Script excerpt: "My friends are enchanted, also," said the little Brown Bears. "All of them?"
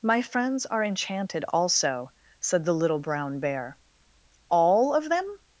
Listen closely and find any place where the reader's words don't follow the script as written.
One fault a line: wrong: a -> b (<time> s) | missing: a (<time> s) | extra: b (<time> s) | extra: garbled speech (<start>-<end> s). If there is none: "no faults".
wrong: Bears -> Bear (3.4 s)